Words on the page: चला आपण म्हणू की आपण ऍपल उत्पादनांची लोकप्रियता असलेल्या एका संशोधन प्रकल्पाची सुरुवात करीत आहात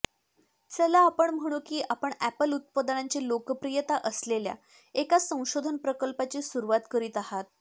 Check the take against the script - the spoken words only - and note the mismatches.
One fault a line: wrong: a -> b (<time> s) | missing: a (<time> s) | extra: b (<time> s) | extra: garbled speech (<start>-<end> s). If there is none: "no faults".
no faults